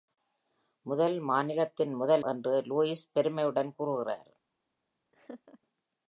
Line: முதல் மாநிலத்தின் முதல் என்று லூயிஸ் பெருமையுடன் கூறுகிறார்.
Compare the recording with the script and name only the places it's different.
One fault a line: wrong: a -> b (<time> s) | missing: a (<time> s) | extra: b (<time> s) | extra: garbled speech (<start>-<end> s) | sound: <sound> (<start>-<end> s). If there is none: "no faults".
sound: laugh (5.1-5.6 s)